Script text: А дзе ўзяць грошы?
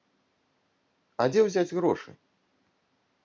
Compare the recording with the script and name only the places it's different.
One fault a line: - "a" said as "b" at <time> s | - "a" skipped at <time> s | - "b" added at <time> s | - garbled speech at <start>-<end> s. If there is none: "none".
none